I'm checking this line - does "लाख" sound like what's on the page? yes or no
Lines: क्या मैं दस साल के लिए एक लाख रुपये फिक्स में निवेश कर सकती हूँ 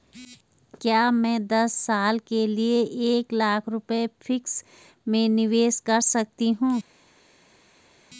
yes